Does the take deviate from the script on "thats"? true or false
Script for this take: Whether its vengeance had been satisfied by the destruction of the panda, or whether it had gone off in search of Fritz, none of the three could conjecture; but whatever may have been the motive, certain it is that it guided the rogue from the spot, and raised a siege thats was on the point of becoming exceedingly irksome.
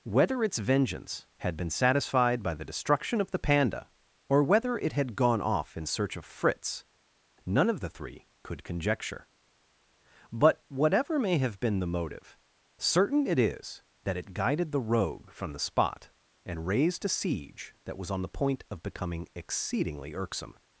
true